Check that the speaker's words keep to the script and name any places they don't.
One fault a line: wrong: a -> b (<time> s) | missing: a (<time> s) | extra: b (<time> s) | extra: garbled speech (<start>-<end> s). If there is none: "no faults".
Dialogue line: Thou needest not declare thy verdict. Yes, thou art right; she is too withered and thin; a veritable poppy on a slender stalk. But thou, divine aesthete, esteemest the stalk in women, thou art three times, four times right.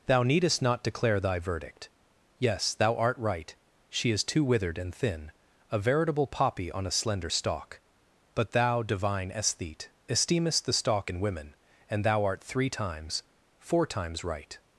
extra: and (11.9 s)